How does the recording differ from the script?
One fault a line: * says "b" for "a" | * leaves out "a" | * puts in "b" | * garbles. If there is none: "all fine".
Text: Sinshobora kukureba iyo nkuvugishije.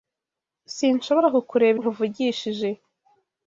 * leaves out "iyo"